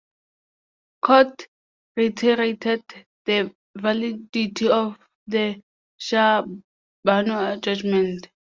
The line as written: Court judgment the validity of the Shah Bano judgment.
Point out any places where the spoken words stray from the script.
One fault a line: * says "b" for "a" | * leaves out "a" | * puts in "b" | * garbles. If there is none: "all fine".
* says "reiterated" for "judgment"